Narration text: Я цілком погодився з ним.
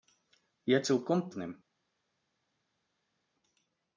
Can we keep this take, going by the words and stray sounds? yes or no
no